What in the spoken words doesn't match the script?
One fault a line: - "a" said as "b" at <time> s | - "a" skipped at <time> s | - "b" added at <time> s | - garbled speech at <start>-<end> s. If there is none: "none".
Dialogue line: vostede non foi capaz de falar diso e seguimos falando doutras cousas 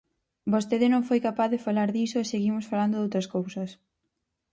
none